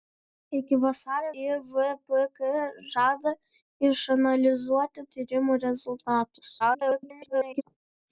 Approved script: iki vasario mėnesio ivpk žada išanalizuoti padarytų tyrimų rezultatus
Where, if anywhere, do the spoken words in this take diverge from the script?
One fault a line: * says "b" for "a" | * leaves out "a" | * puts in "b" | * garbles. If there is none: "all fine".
* leaves out "mėnesio"
* leaves out "padarytų"
* garbles